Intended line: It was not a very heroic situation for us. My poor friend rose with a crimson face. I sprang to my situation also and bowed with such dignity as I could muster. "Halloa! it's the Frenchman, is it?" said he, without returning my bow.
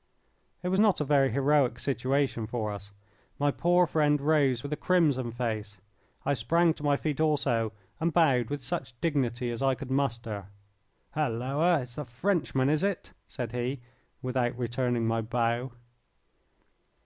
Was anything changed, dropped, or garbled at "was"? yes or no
no